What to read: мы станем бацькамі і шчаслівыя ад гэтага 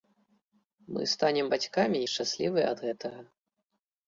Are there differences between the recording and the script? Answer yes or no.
no